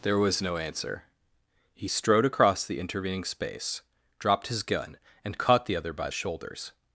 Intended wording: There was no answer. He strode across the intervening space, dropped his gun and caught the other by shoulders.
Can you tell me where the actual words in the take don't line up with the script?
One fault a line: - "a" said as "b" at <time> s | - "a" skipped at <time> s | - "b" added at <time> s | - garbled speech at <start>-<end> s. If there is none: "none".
none